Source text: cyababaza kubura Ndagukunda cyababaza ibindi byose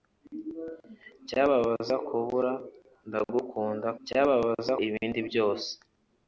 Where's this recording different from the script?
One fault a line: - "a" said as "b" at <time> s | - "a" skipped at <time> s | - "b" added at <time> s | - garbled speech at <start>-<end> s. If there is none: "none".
none